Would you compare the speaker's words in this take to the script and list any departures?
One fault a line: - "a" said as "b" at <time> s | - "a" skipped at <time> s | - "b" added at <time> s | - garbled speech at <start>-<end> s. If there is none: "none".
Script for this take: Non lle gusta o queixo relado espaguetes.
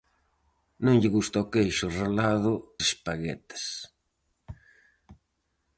none